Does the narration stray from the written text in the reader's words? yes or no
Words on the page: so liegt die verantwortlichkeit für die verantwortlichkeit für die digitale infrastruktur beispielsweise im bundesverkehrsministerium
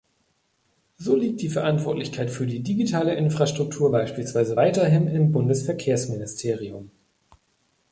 yes